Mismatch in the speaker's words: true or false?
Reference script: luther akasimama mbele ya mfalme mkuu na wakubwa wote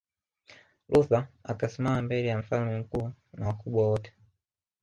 false